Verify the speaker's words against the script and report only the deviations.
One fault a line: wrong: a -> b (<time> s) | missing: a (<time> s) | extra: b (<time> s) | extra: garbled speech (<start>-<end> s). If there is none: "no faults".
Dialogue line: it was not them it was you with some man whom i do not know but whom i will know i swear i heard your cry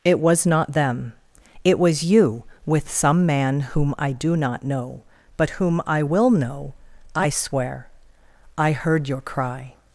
no faults